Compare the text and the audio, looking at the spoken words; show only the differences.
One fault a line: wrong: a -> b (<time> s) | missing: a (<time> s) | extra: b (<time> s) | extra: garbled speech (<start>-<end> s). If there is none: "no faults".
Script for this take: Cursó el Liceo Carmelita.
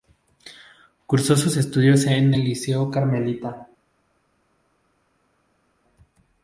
extra: sus estudios en (1.4 s)